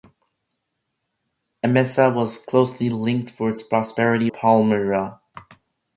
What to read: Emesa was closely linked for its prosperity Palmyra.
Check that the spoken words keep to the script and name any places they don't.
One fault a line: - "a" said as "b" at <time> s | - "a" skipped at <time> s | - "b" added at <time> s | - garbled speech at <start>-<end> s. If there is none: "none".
none